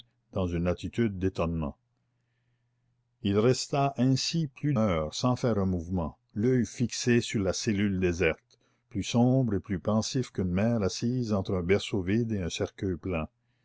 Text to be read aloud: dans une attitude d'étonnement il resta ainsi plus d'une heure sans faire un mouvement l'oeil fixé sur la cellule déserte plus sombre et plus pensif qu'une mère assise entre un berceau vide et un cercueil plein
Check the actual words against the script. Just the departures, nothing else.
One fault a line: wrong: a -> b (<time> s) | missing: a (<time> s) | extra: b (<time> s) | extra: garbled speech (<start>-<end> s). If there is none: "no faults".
missing: d'une (4.7 s)